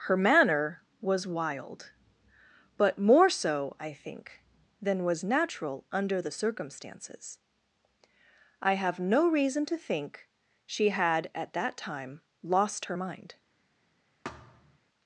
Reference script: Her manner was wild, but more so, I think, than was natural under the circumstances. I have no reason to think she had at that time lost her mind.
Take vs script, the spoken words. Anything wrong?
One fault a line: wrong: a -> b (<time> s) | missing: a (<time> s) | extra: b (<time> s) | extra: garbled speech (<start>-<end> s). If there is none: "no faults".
no faults